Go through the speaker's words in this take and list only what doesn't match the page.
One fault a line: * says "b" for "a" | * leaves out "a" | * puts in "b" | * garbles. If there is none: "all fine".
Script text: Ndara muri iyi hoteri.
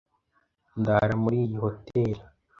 all fine